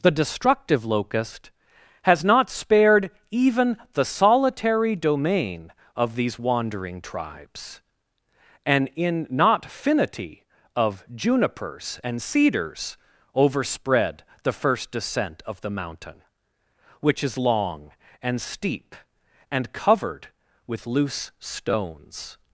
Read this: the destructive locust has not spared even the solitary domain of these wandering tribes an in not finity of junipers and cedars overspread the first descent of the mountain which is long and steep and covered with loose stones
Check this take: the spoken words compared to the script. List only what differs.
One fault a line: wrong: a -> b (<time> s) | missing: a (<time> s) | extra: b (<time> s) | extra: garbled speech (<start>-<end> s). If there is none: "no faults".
no faults